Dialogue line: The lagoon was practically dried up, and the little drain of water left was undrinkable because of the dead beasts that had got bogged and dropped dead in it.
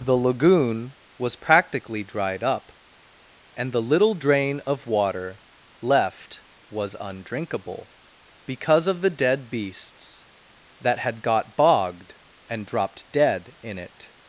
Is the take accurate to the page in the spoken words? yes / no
yes